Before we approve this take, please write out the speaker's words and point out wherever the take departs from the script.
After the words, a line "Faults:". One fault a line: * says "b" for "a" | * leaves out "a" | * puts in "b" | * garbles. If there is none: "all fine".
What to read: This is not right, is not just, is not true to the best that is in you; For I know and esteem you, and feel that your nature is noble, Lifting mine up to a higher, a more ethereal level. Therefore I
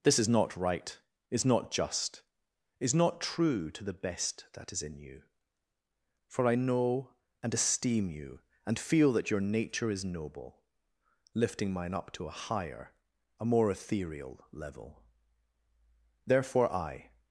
This is not right, is not just, is not true to the best that is in you; For I know and esteem you, and feel that your nature is noble, Lifting mine up to a higher, a more ethereal level. Therefore I
Faults:
all fine